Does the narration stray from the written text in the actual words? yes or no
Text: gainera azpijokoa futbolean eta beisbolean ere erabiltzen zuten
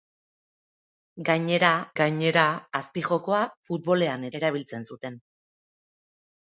yes